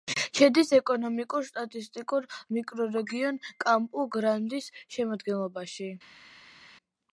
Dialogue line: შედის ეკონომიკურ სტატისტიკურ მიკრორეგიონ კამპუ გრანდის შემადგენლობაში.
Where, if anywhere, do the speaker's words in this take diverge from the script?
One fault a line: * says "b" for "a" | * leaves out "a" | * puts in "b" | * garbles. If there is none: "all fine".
all fine